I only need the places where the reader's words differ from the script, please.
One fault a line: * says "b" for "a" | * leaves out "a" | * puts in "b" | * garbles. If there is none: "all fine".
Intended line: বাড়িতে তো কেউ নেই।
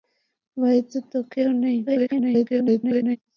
* garbles